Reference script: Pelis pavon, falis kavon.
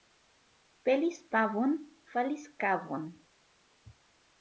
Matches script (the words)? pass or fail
pass